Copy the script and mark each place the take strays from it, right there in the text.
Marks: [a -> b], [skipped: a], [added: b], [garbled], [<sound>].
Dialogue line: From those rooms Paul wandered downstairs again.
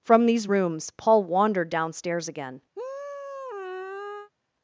From [those -> these] rooms Paul wandered downstairs again. [sigh]